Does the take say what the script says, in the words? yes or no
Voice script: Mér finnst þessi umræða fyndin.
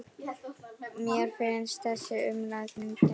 yes